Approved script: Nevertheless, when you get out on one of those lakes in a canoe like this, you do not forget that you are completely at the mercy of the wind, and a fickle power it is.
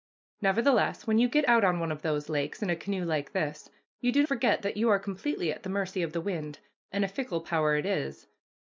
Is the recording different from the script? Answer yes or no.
yes